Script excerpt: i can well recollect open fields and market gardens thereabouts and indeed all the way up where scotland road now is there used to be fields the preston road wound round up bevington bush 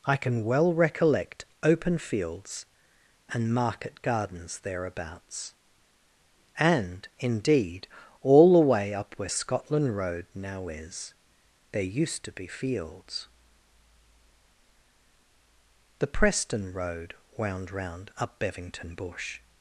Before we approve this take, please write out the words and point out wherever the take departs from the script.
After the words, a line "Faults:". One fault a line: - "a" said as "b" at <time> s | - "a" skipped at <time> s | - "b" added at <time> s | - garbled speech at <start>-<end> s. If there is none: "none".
i can well recollect open fields and market gardens thereabouts and indeed all the way up where scotland road now is there used to be fields the preston road wound round up bevington bush
Faults:
none